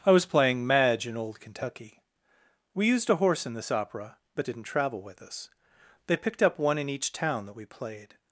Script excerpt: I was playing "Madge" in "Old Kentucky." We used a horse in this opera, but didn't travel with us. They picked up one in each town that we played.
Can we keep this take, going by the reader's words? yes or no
yes